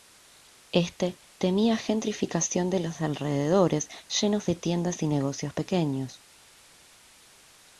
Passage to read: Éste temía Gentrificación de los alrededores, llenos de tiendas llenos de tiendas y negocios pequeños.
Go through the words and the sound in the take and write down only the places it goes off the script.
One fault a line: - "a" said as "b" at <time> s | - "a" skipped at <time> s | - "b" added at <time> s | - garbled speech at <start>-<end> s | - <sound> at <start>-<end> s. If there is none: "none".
- "llenos de tiendas" skipped at 5.0 s